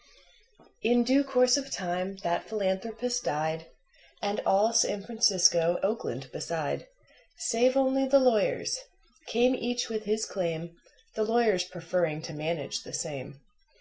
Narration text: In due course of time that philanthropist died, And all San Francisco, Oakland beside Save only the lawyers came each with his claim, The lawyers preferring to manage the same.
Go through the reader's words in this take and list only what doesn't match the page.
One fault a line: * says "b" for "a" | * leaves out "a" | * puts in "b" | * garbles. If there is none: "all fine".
all fine